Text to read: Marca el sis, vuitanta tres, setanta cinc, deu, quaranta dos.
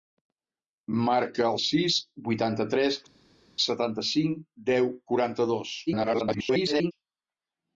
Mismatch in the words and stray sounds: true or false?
true